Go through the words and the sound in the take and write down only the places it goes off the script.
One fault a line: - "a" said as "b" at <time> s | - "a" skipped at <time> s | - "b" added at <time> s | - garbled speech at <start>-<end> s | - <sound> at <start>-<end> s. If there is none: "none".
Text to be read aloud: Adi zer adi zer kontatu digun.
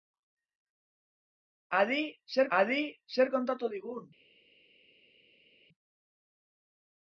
none